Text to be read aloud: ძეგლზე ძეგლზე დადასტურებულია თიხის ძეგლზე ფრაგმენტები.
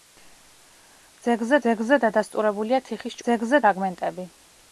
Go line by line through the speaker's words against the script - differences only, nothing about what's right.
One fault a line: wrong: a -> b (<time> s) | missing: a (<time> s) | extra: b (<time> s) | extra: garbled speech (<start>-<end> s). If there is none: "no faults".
no faults